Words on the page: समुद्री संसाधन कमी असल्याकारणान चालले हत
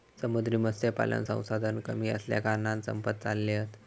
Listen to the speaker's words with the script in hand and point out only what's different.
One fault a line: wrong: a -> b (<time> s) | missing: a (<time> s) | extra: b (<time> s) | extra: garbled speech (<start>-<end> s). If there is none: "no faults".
extra: मत्स्यपालन (0.6 s)
extra: संपत (2.8 s)